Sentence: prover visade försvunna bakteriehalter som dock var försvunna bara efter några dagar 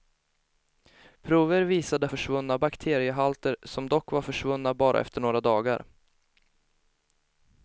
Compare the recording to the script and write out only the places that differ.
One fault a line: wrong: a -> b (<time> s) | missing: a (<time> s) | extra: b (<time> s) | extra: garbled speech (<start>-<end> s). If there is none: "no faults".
no faults